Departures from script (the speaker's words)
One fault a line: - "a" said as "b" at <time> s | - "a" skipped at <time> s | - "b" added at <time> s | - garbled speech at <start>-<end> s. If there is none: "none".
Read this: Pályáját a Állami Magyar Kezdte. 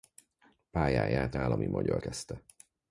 none